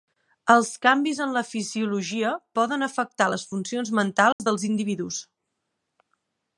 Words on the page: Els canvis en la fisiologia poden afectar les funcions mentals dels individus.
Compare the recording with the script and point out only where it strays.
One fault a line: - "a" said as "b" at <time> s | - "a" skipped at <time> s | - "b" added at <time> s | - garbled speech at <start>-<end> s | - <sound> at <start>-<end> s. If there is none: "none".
- dropout at 4.3-4.4 s